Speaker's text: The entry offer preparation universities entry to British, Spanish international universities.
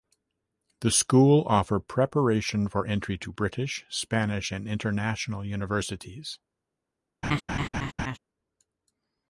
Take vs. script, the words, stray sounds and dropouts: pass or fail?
fail